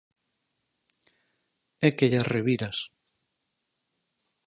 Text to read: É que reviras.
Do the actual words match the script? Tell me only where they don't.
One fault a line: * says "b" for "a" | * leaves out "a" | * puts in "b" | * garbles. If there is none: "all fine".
* puts in "llas"